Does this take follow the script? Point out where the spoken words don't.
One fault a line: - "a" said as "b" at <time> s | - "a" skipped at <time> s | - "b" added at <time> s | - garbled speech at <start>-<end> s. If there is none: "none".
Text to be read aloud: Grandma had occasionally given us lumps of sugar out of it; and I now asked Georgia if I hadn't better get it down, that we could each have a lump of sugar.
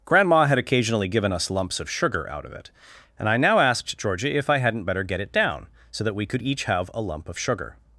- "so" added at 5.9 s